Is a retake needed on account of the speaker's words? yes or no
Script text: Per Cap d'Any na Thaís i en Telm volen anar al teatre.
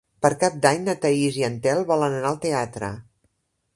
no